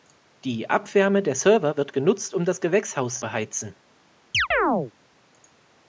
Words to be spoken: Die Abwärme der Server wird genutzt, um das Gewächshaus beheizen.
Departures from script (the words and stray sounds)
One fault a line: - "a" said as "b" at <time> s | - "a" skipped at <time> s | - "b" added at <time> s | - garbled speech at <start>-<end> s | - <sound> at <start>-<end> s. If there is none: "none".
- chirp at 4.3-4.9 s